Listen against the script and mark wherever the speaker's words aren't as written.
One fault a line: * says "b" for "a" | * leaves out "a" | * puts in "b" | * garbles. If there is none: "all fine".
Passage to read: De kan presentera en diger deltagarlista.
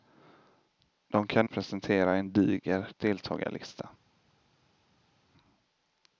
all fine